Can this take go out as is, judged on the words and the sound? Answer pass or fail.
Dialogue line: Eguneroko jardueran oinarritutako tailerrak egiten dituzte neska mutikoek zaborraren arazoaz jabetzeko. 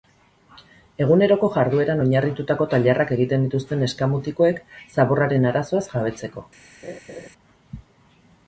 fail